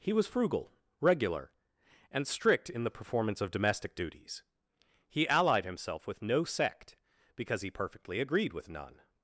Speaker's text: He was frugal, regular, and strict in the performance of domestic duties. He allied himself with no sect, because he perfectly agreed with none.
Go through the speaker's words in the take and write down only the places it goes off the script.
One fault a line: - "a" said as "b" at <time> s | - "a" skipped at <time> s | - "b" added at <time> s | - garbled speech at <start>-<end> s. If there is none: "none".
none